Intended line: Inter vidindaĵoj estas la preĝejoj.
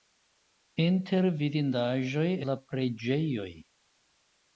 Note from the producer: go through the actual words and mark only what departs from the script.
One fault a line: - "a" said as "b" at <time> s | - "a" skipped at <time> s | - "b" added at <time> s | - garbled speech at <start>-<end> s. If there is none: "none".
- "estas" skipped at 2.3 s